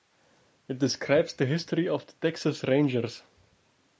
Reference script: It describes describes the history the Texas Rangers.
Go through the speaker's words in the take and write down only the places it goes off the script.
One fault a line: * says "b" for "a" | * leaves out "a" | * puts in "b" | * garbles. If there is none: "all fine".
* leaves out "describes"
* puts in "of"